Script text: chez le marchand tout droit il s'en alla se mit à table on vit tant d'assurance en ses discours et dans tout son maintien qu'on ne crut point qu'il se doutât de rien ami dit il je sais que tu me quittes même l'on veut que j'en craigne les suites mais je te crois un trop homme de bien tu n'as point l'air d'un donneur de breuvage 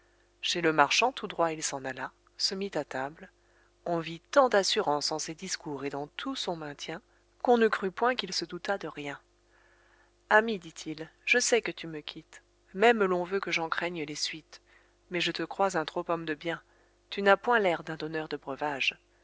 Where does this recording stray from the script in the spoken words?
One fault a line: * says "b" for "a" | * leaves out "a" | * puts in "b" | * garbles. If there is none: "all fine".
all fine